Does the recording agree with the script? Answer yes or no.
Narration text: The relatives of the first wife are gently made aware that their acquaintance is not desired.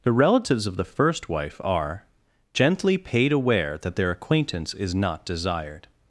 no